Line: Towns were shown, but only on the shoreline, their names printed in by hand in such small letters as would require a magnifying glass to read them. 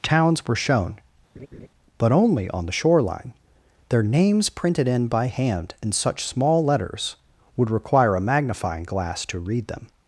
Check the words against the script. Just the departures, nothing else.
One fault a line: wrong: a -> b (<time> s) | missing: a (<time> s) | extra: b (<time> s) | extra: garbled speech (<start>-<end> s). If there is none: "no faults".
missing: as (7.2 s)